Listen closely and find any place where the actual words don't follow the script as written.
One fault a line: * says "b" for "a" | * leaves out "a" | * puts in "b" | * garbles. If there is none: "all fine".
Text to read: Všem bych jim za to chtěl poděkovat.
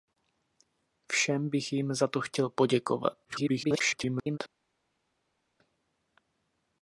* garbles